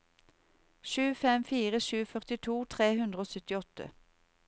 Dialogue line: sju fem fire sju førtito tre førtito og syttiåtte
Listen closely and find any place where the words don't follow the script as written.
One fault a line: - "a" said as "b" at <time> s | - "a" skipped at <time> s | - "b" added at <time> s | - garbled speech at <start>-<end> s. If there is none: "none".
- "førtito" said as "hundre" at 3.0 s